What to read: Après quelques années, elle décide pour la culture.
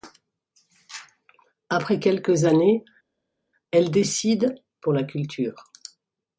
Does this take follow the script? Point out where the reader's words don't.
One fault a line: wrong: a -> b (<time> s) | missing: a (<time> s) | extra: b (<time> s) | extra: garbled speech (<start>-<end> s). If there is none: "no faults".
no faults